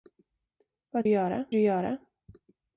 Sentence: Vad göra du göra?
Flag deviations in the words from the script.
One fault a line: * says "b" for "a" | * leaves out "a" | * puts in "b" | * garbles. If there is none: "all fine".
all fine